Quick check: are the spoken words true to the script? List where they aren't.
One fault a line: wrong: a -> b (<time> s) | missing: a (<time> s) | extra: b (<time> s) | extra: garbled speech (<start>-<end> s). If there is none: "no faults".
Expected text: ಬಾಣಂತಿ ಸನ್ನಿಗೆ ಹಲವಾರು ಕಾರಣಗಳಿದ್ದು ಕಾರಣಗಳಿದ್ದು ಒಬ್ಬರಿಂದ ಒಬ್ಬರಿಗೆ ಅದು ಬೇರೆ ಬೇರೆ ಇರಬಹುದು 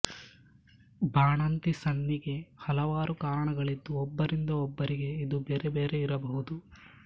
missing: ಕಾರಣಗಳಿದ್ದು (3.9 s)
wrong: ಅದು -> ಇದು (5.3 s)